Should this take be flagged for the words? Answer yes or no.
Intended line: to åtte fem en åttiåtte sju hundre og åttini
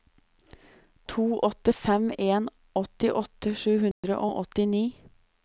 no